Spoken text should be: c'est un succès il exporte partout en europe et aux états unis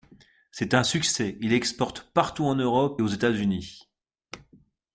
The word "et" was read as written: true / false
false